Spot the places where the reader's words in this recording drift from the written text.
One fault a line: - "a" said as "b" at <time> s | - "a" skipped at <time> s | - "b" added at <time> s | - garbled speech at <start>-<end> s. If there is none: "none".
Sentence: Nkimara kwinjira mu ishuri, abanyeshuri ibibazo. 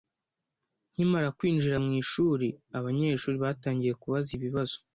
- "batangiye kubaza" added at 3.4 s